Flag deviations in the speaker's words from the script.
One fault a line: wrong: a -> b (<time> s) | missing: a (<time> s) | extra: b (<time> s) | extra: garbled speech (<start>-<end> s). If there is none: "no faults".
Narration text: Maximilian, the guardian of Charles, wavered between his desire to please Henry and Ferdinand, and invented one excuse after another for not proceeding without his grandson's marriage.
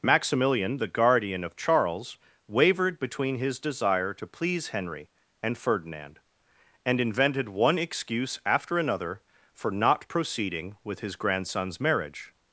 wrong: without -> with (10.8 s)